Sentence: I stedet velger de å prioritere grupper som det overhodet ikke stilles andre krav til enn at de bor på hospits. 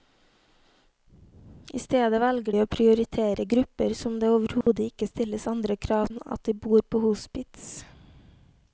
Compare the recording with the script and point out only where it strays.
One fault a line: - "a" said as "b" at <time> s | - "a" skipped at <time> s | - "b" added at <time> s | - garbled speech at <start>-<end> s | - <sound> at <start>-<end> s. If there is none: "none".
- dropout at 4.6-4.7 s
- "til" skipped at 6.1 s